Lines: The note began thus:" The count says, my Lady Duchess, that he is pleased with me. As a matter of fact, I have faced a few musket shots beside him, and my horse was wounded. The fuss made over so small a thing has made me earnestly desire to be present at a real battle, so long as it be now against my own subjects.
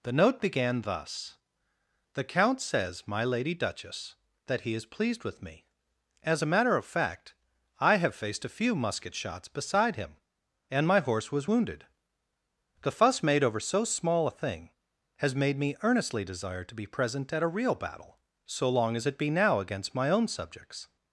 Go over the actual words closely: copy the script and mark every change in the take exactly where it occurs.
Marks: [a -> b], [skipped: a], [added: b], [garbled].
The note began thus:" The count says, my Lady Duchess, that he is pleased with me. As a matter of fact, I have faced a few musket shots beside him, and my horse was wounded. The fuss made over so small a thing has made me earnestly desire to be present at a real battle, so long as it be now against my own subjects.